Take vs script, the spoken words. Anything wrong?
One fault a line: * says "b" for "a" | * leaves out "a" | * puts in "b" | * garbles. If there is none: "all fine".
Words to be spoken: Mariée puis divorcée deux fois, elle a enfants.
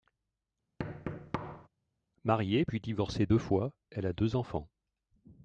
* puts in "deux"